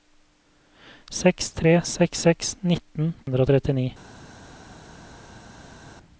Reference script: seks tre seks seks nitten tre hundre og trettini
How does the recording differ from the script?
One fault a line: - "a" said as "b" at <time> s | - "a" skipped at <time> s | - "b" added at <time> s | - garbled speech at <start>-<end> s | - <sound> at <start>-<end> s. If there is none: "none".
- "tre" skipped at 3.1 s